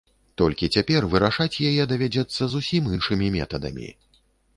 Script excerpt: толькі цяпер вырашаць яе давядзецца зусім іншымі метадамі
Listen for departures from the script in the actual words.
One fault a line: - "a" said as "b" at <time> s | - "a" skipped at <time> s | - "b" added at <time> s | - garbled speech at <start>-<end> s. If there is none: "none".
none